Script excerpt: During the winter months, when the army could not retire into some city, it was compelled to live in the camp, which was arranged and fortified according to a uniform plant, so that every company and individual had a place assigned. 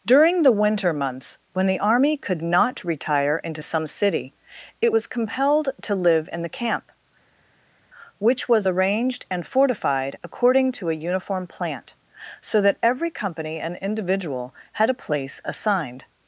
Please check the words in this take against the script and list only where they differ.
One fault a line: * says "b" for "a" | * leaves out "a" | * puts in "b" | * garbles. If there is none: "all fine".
all fine